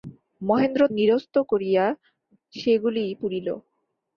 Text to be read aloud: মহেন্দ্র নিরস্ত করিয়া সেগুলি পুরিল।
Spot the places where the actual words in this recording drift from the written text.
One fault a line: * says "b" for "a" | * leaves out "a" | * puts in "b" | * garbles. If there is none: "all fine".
all fine